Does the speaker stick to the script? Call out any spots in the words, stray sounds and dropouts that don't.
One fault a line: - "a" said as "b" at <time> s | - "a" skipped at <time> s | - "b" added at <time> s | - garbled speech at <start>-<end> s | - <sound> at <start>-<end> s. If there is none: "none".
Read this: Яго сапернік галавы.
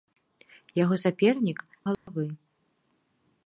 - dropout at 1.9-2.1 s